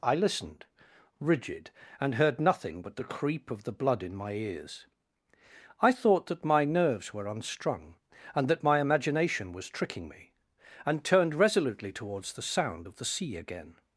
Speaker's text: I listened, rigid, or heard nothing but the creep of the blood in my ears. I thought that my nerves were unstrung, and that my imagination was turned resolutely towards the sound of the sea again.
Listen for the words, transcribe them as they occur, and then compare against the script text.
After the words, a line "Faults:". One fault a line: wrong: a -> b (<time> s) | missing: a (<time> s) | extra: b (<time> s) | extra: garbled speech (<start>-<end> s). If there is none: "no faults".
I listened, rigid, and heard nothing but the creep of the blood in my ears. I thought that my nerves were unstrung, and that my imagination was tricking me, and turned resolutely towards the sound of the sea again.
Faults:
wrong: or -> and (2.0 s)
extra: tricking me and (9.7 s)